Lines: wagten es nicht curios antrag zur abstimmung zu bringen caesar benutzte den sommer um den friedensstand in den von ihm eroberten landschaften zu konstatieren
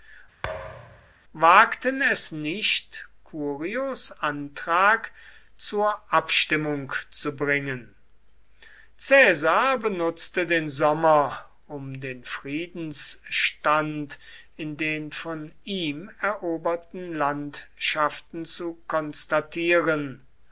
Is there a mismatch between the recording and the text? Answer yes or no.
no